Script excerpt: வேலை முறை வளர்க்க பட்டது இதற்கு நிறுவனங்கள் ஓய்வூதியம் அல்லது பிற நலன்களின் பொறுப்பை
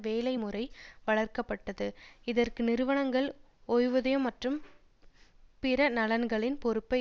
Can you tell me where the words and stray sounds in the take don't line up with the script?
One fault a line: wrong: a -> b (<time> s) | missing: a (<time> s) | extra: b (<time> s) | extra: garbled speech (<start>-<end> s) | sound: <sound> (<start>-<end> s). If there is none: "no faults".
wrong: அல்லது -> மற்றும் (4.2 s)